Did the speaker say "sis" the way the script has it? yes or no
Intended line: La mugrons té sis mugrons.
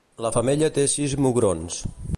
yes